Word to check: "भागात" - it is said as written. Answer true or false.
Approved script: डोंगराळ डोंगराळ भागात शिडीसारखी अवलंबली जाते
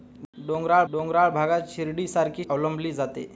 true